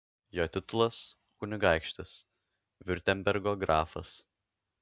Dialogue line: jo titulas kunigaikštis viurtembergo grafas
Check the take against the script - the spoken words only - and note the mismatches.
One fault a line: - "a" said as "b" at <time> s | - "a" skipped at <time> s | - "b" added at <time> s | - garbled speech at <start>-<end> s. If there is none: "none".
none